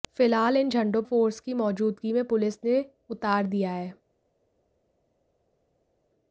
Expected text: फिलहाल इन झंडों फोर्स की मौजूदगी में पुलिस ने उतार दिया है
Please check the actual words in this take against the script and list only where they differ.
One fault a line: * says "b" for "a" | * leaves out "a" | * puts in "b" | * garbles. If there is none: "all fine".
all fine